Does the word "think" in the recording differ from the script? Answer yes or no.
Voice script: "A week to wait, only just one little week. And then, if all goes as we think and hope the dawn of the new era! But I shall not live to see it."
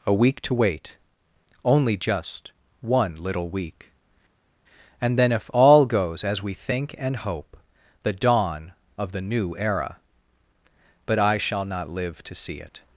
no